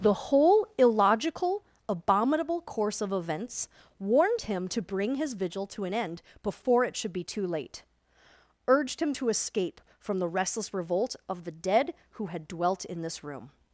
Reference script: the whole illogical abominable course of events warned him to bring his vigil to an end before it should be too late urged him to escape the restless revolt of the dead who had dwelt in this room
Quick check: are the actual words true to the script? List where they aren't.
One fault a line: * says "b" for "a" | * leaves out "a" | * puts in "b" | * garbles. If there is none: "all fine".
* puts in "from"